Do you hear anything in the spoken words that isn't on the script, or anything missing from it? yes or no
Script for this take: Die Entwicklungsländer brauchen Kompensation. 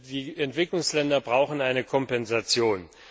yes